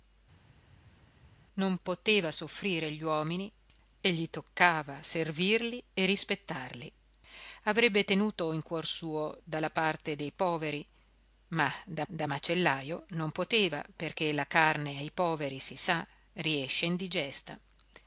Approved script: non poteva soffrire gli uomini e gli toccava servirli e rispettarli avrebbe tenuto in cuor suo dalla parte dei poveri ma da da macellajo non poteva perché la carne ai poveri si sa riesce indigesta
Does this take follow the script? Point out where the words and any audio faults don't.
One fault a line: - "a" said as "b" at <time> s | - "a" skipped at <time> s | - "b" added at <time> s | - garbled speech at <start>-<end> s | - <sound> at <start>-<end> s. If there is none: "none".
none